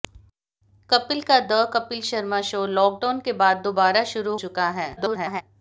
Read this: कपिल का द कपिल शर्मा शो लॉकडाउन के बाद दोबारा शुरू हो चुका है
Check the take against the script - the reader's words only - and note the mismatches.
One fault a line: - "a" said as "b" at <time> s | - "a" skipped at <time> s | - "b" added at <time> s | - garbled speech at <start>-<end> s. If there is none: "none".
- "हो" skipped at 4.3 s
- garbled speech at 5.0-5.4 s